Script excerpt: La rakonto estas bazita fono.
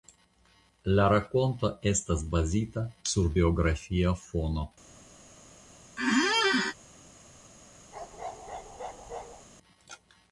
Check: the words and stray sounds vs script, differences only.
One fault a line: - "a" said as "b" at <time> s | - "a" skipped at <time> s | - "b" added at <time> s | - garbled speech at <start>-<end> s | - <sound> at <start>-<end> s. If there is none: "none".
- "sur biografia" added at 3.1 s
- squeak at 6.0-6.7 s
- bark at 7.9-9.5 s